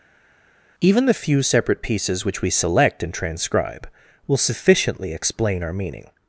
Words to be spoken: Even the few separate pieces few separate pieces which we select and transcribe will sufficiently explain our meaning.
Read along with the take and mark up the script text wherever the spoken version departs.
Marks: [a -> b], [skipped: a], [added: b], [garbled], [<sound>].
Even the few separate pieces [skipped: few separate pieces] which we select and transcribe will sufficiently explain our meaning.